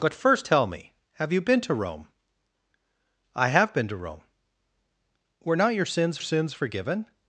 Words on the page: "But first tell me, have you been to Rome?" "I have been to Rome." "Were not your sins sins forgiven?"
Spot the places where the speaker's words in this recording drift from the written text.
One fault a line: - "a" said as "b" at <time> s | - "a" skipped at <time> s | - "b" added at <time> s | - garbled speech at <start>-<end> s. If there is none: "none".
none